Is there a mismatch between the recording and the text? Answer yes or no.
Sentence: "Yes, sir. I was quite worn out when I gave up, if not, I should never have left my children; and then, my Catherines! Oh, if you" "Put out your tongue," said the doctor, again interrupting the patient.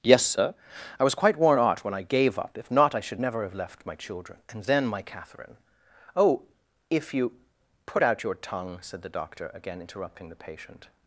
yes